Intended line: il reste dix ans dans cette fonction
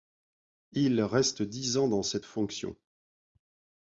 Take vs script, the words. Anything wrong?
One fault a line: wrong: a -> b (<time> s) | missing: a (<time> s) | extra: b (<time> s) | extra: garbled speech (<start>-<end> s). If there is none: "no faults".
no faults